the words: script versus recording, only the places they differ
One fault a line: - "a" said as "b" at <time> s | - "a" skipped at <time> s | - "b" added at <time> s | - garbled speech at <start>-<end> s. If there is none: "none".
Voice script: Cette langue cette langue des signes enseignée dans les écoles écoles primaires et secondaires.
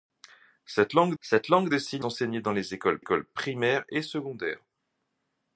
none